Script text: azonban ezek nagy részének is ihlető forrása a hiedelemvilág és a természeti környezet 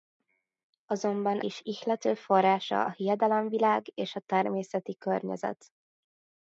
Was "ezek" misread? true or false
true